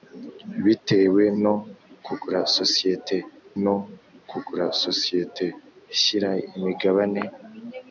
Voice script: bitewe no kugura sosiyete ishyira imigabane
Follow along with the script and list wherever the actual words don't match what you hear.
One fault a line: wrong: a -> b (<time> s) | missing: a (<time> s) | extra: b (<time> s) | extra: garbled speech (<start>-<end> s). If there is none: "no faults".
extra: no kugura sosiyete (3.6 s)